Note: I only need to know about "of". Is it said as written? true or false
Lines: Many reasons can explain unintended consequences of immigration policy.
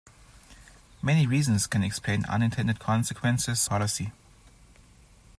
false